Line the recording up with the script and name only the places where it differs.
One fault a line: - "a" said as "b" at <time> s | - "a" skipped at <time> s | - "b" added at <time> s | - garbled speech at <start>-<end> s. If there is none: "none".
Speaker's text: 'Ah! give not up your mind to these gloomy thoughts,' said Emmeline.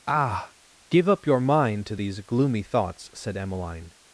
- "not" skipped at 1.1 s